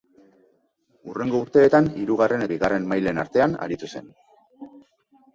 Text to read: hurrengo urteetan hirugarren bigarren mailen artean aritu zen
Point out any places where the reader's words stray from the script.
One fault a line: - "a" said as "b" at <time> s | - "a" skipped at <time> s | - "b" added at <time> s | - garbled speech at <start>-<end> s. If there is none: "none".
none